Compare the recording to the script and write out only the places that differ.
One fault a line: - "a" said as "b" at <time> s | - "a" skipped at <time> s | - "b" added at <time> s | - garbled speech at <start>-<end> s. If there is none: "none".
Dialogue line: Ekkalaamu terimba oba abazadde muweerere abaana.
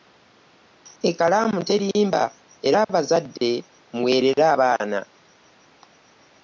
- "oba" said as "era" at 2.7 s